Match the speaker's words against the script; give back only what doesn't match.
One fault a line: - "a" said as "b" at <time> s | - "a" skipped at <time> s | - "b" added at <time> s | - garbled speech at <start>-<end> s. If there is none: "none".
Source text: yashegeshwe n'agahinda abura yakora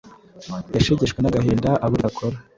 none